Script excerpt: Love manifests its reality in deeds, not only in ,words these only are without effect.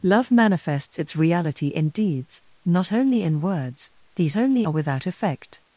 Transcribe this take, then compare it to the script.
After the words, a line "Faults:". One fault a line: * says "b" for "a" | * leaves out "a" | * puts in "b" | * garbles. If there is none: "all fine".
Love manifests its reality in deeds, not only in ,words these only are without effect.
Faults:
all fine